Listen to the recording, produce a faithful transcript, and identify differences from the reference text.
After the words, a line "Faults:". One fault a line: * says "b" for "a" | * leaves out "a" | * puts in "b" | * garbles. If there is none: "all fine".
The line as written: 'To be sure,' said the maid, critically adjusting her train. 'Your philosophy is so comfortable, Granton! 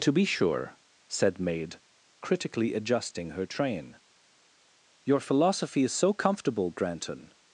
'To be sure,' said maid, critically adjusting her train. 'Your philosophy is so comfortable, Granton!
Faults:
* leaves out "the"